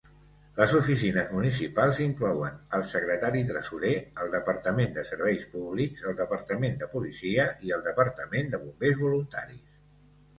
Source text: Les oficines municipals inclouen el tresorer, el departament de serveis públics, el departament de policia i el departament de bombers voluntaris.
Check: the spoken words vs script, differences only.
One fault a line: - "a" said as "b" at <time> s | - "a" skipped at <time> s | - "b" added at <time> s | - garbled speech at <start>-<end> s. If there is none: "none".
- "secretari" added at 2.9 s